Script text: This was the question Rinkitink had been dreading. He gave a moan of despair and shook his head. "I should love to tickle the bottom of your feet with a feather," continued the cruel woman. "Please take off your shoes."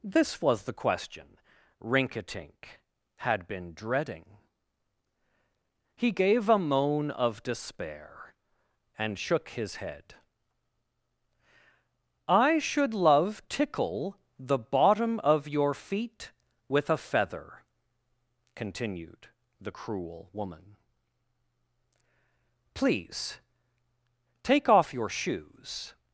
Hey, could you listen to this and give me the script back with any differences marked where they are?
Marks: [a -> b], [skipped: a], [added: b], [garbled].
This was the question Rinkitink had been dreading. He gave a moan of despair and shook his head. "I should love [skipped: to] tickle the bottom of your feet with a feather," continued the cruel woman. "Please take off your shoes."